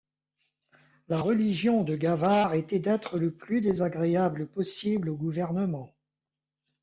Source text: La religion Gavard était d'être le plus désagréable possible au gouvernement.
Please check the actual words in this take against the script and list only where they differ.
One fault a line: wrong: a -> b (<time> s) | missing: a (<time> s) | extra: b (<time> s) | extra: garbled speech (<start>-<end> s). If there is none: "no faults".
extra: de (1.8 s)